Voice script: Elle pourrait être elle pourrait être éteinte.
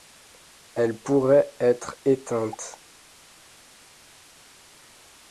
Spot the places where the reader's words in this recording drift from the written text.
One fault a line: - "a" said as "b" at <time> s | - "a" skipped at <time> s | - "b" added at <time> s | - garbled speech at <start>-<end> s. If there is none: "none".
- "elle pourrait être" skipped at 2.0 s